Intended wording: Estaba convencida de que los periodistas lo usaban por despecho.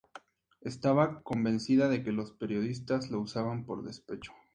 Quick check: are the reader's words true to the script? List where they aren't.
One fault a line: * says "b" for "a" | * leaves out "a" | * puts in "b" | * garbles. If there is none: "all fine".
all fine